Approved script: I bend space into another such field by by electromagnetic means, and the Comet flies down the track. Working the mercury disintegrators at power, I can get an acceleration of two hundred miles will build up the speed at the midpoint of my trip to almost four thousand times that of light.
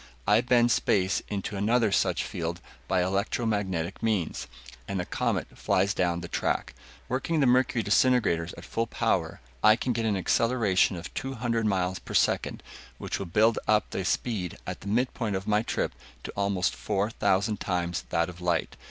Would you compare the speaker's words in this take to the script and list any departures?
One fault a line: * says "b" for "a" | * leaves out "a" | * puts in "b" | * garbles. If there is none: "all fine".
* leaves out "by"
* puts in "full"
* puts in "per second which"